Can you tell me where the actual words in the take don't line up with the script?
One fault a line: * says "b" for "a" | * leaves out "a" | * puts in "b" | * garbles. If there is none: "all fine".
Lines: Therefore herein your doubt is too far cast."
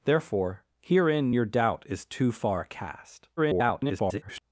* garbles